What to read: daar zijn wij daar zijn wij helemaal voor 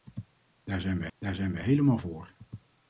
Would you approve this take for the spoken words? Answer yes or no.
yes